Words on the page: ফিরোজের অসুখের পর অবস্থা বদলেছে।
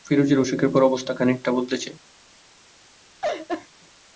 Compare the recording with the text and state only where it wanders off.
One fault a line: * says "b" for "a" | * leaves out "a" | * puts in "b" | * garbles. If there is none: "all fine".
* puts in "খানিকটা"